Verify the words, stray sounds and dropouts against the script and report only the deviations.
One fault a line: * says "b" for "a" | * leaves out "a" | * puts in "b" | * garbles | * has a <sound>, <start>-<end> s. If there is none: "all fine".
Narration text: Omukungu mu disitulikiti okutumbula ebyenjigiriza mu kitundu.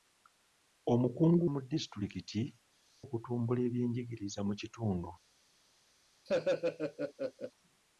* has a laugh, 6.3-7.5 s